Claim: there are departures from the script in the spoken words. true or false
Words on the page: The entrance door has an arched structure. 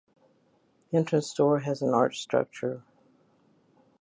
false